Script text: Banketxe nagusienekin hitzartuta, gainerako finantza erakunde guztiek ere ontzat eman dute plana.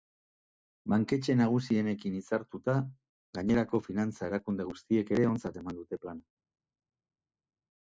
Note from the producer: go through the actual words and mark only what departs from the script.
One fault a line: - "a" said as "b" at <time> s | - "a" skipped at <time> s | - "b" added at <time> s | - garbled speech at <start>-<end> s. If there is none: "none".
none